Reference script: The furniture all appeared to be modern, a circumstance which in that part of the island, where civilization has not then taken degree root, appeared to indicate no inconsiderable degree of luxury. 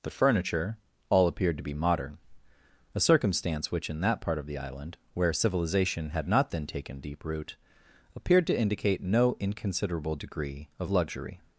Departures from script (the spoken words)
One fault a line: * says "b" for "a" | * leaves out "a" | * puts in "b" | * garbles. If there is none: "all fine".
* says "had" for "has"
* says "deep" for "degree"